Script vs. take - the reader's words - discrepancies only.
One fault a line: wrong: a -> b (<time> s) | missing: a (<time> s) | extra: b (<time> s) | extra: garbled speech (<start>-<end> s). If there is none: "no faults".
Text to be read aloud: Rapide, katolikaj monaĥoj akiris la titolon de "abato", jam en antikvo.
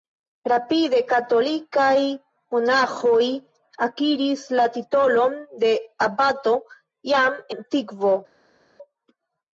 missing: en (7.4 s)